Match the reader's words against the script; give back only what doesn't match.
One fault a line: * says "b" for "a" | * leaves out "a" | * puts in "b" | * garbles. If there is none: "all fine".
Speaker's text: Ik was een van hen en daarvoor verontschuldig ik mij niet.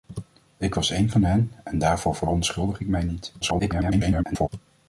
* garbles